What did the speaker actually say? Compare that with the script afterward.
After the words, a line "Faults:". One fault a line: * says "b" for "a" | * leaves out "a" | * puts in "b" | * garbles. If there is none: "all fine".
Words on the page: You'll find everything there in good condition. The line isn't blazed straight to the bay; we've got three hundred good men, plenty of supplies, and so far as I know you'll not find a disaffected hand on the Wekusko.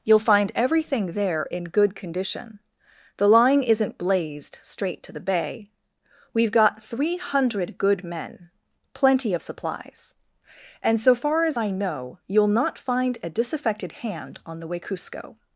You'll find everything there in good condition. The line isn't blazed straight to the bay; we've got three hundred good men, plenty of supplies, and so far as I know you'll not find a disaffected hand on the Wekusko.
Faults:
all fine